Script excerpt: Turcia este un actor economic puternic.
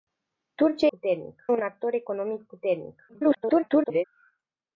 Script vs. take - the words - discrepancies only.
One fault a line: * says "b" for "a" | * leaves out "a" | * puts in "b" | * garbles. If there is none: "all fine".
* says "puternic" for "este"
* garbles